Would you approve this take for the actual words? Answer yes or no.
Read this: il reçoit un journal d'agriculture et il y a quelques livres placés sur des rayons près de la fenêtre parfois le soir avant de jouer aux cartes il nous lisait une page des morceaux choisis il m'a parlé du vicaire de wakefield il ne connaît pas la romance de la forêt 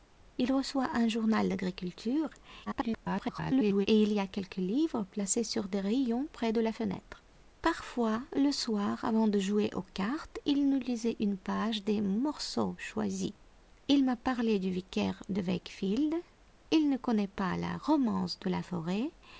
no